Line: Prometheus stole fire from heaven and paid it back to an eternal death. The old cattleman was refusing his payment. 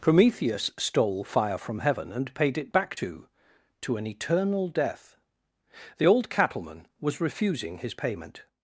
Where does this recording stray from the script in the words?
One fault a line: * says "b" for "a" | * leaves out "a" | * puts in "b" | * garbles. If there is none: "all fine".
* puts in "to"